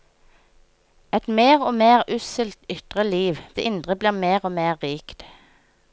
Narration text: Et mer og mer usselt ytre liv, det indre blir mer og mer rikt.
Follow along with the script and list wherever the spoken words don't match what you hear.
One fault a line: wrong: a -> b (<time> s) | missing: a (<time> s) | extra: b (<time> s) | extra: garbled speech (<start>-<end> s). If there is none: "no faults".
no faults